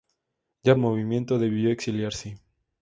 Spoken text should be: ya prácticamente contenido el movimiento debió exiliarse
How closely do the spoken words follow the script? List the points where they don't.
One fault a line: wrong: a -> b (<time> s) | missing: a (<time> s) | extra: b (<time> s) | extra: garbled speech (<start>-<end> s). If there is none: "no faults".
missing: prácticamente contenido (0.8 s)